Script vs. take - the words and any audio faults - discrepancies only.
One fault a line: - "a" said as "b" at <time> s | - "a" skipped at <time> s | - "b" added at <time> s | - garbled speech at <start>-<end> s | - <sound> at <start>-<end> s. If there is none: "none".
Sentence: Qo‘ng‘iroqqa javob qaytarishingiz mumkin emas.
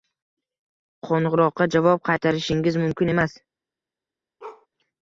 - bark at 4.4-4.7 s